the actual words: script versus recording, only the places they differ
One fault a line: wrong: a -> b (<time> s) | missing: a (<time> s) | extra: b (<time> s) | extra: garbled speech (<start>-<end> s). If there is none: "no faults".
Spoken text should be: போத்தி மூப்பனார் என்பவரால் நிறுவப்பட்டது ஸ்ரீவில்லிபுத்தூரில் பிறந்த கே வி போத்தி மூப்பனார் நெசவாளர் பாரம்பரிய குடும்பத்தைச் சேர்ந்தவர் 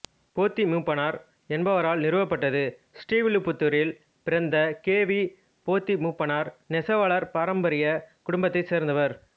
no faults